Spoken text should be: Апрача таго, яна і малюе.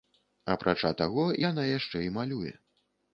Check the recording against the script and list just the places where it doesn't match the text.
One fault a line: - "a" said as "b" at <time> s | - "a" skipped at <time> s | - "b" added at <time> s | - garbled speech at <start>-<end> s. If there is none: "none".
- "яшчэ" added at 1.8 s